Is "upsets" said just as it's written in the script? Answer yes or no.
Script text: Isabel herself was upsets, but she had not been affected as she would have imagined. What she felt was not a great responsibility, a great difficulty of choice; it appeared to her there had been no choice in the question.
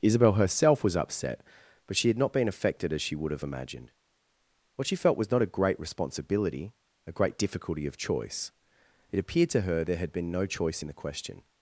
no